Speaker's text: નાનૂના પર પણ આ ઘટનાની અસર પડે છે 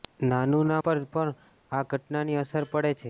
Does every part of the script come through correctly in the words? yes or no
yes